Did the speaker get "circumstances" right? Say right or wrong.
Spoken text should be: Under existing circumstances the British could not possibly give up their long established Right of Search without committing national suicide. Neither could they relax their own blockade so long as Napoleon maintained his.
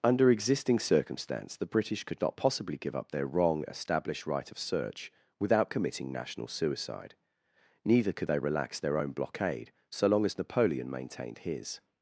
wrong